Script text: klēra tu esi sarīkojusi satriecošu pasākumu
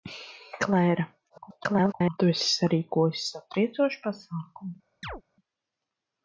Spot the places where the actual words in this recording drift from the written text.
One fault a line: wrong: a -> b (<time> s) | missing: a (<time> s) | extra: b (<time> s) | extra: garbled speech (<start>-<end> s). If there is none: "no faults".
extra: garbled speech (1.3-2.2 s)